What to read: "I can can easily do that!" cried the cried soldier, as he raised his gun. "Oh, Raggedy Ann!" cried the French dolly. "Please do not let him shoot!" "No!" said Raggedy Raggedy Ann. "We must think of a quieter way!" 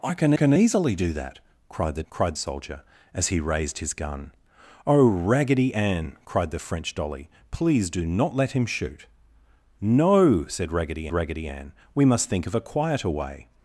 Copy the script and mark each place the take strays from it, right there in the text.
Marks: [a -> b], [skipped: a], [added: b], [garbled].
"I can can easily do that!" cried the cried soldier, as he raised his gun. "Oh, Raggedy Ann!" cried the French dolly. "Please do not let him shoot!" "No!" said Raggedy Raggedy Ann. "We must think of a quieter way!"